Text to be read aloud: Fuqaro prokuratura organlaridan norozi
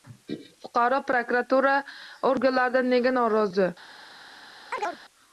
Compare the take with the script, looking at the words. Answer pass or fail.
fail